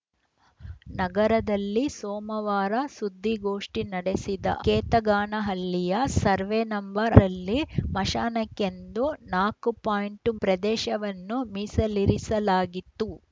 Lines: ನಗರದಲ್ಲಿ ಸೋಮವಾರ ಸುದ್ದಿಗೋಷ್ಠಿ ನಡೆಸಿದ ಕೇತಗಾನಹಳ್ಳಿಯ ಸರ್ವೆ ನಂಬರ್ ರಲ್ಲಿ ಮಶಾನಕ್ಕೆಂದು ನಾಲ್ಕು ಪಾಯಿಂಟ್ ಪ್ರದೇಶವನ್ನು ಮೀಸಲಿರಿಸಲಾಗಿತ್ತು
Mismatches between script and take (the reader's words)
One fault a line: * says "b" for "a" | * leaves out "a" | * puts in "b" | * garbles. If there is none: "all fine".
all fine